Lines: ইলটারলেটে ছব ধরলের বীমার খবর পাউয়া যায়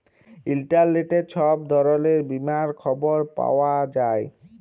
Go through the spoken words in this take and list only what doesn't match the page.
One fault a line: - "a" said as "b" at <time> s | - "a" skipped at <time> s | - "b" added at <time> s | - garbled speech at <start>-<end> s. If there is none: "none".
none